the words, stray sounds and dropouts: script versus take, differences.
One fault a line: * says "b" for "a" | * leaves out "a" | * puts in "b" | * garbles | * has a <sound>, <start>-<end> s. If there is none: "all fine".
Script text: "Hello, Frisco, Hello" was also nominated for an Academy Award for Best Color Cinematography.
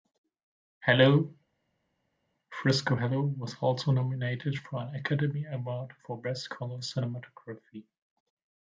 all fine